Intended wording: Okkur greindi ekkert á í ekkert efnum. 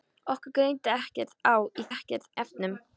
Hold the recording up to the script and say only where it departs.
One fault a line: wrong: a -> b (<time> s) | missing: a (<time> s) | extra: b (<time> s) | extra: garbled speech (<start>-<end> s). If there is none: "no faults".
no faults